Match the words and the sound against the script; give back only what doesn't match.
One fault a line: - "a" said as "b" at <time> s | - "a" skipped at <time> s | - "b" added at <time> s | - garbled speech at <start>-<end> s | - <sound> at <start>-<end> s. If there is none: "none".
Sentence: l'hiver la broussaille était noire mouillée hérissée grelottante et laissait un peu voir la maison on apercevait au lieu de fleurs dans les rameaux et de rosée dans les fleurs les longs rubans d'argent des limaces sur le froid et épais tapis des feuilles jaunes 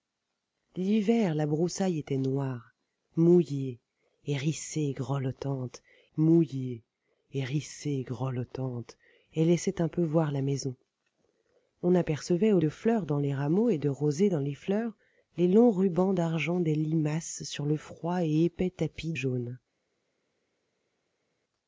- "mouillée hérissée grelottante" added at 6.2 s
- "lieu" skipped at 12.6 s
- "des feuilles" skipped at 19.1 s